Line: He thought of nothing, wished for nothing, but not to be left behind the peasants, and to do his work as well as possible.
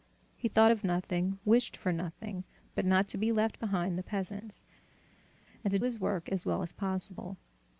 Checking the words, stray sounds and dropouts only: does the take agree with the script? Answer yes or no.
no